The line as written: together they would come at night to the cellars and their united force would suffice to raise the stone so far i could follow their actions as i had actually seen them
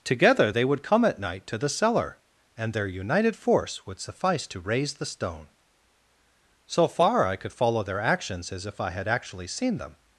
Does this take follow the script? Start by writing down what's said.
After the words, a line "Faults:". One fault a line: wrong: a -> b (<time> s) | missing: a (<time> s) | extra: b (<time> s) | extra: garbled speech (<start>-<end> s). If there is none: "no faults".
together they would come at night to the cellar and their united force would suffice to raise the stone so far i could follow their actions as if i had actually seen them
Faults:
wrong: cellars -> cellar (1.7 s)
extra: if (8.7 s)